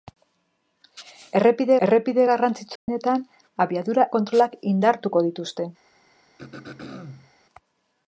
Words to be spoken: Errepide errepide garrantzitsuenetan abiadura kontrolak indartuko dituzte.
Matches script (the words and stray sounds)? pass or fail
fail